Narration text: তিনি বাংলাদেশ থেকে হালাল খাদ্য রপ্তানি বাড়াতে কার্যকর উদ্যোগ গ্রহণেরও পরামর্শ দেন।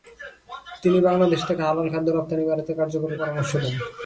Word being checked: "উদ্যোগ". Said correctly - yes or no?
no